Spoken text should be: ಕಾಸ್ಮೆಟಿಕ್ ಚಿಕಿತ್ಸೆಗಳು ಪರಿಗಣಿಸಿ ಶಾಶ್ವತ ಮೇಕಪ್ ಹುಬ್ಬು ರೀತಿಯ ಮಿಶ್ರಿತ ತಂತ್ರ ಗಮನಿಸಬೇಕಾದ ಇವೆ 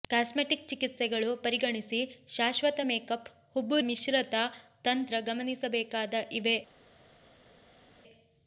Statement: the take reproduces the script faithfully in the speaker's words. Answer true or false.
false